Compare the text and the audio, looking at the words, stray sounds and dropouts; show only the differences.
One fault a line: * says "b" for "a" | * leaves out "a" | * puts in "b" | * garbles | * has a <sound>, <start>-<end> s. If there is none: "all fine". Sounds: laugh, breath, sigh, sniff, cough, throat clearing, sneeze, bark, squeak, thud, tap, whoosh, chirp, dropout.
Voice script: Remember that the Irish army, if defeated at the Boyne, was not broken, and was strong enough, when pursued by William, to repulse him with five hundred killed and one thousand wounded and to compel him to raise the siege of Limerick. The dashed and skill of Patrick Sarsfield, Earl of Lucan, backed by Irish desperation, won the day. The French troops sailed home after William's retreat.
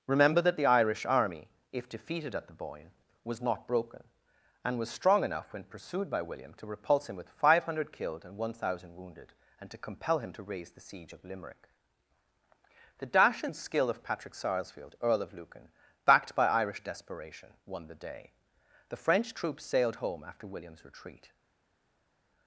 * says "dash" for "dashed"